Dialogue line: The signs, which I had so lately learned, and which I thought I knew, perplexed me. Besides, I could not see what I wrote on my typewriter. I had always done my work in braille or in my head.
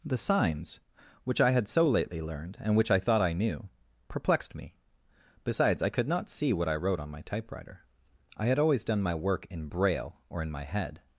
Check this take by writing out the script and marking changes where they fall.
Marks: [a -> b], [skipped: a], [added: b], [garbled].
The signs, which I had so lately learned, and which I thought I knew, perplexed me. Besides, I could not see what I wrote on my typewriter. I had always done my work in braille or in my head.